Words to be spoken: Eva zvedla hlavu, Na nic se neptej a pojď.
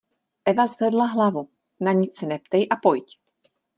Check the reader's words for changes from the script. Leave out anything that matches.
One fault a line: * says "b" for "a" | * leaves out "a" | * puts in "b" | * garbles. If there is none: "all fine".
all fine